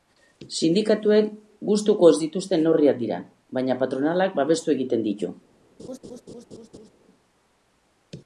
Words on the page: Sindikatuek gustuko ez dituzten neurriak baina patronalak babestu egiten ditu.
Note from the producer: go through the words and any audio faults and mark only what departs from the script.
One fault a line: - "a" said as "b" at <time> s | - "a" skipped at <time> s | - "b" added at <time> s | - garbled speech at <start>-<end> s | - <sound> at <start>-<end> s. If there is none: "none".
- "dira" added at 3.0 s
- laugh at 5.8-6.9 s